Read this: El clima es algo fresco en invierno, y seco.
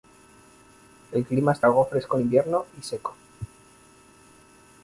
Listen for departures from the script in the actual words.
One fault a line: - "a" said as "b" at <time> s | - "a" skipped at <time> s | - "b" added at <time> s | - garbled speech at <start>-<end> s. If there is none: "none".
none